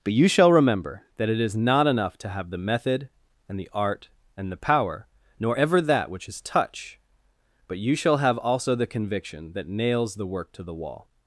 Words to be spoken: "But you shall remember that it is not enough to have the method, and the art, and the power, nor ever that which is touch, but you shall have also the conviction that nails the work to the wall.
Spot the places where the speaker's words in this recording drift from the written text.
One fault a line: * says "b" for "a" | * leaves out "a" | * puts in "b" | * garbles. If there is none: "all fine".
all fine